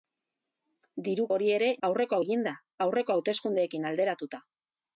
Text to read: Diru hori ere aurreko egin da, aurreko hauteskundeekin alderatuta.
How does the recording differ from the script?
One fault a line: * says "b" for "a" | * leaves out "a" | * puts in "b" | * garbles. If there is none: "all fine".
all fine